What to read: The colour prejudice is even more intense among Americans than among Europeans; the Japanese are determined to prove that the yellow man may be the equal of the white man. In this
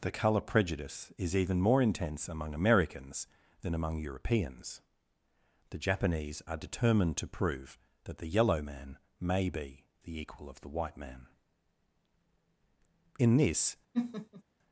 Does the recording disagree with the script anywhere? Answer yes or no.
no